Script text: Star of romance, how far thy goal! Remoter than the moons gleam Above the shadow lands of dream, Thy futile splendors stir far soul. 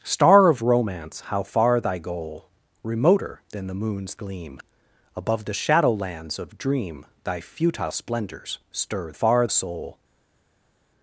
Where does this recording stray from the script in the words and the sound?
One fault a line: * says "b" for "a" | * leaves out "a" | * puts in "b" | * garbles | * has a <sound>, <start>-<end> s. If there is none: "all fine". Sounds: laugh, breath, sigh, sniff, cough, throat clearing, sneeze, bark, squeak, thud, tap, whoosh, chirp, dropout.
all fine